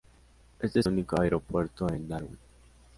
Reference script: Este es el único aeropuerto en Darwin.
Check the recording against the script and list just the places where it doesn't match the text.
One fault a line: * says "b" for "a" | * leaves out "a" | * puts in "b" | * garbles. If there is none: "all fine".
* leaves out "el"